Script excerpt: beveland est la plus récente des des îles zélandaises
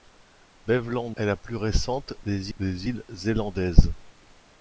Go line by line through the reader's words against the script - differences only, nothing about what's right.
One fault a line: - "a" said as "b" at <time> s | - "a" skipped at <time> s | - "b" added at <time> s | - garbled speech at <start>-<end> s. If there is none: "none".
none